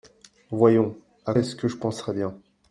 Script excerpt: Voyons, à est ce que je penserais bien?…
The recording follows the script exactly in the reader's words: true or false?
true